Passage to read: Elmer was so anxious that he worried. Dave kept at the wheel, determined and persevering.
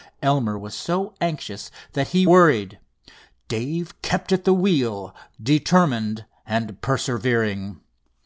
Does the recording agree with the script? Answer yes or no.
yes